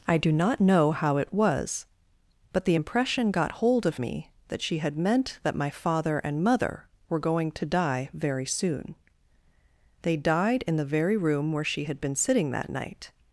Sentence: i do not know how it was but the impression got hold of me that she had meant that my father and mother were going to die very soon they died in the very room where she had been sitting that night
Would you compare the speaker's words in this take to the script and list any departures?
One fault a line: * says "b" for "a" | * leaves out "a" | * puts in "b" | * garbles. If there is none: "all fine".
all fine